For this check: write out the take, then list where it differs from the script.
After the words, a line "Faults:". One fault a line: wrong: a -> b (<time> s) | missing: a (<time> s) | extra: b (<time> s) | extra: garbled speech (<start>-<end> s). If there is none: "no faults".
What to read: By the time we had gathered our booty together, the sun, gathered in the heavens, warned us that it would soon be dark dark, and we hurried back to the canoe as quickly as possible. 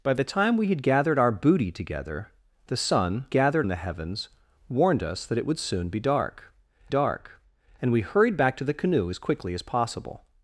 By the time we had gathered our booty together, the sun, gathered in the heavens, warned us that it would soon be dark dark, and we hurried back to the canoe as quickly as possible.
Faults:
no faults